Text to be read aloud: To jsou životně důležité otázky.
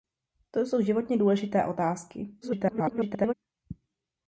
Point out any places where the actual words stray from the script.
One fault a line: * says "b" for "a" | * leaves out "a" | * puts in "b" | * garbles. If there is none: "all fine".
* garbles